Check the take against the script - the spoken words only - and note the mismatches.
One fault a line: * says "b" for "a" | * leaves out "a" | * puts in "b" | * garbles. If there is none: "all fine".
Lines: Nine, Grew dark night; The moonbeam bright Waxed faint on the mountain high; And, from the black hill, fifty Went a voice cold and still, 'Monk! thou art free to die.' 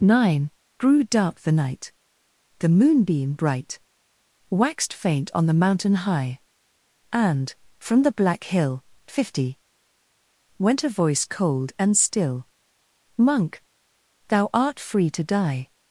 * puts in "the"